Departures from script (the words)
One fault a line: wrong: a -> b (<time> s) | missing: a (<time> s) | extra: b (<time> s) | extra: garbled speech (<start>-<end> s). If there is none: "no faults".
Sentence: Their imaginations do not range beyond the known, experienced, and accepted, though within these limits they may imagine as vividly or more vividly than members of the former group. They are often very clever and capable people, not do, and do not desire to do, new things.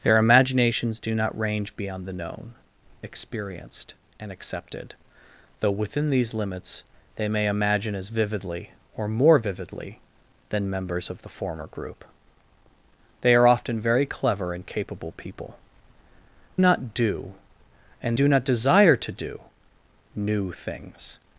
no faults